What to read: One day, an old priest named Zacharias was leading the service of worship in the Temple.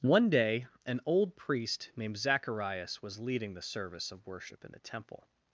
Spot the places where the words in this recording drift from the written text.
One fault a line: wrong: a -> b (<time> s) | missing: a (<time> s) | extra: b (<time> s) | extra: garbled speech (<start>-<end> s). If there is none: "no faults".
no faults